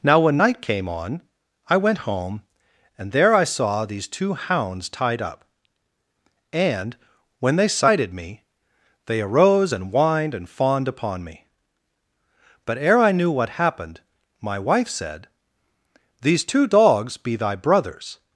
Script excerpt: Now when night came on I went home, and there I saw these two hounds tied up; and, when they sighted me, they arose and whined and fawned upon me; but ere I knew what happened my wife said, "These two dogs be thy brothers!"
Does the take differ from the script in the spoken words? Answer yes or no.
no